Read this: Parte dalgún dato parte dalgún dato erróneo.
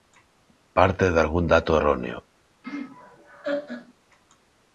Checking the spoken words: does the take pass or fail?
fail